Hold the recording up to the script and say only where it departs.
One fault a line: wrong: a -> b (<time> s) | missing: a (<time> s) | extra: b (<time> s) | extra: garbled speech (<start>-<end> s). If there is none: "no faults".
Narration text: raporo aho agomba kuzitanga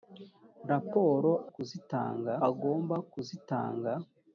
wrong: aho -> kuzitanga (1.5 s)